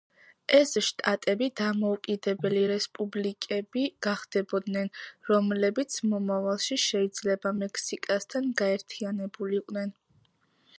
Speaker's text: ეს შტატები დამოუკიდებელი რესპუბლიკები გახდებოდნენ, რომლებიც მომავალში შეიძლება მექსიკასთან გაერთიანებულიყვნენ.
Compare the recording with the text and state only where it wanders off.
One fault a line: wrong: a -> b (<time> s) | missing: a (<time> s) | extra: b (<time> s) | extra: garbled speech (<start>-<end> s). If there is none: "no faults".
no faults